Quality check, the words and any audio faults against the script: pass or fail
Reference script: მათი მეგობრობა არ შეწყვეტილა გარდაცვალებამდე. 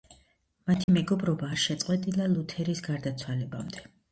fail